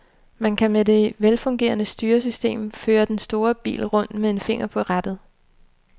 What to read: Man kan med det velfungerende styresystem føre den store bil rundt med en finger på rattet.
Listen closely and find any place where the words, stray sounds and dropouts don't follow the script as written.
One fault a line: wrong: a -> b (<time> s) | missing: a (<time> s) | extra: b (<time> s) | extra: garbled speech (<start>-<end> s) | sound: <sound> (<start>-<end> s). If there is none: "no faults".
no faults